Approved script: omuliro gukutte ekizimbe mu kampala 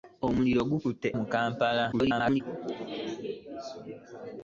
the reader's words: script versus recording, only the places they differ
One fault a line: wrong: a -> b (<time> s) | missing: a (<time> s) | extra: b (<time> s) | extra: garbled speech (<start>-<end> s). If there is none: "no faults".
missing: ekizimbe (1.1 s)
extra: garbled speech (1.9-2.4 s)